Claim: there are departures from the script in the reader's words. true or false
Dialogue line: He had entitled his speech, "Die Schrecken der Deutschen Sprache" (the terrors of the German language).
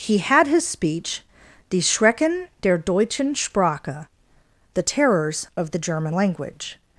true